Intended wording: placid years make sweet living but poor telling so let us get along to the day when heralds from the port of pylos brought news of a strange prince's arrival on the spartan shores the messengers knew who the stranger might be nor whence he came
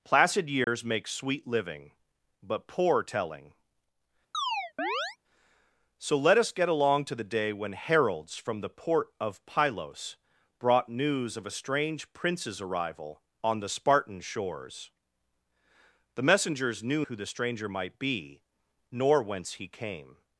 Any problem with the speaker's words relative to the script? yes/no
no